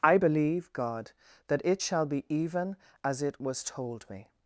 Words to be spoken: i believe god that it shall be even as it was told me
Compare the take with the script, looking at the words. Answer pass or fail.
pass